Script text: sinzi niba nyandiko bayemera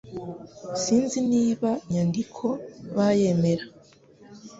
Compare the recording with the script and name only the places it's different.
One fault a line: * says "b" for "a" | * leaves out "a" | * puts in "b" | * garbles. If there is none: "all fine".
all fine